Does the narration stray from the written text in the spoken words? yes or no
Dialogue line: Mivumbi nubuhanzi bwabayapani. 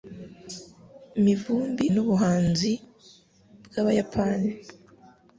no